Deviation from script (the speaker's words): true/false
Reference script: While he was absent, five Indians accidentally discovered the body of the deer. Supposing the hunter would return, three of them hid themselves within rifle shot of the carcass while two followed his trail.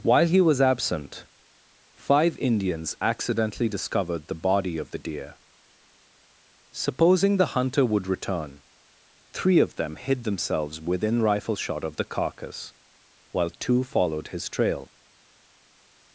false